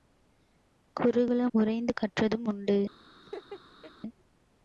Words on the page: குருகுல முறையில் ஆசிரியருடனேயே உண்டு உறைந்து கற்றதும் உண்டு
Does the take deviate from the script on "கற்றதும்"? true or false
false